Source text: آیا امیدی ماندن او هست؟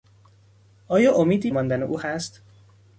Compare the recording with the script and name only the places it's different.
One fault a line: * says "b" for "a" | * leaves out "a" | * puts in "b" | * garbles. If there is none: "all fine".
all fine